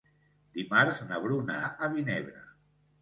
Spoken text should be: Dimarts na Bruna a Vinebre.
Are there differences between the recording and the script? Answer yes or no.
no